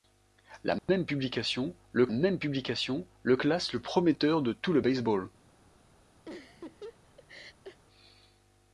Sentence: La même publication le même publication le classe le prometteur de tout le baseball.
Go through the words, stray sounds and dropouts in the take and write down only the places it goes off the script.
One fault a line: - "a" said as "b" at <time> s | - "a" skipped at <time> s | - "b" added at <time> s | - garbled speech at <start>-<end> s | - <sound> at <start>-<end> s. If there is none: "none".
- dropout at 0.8-0.9 s
- laugh at 6.3-7.8 s